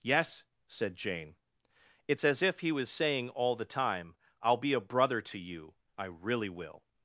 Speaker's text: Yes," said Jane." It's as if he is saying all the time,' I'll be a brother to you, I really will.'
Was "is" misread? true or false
true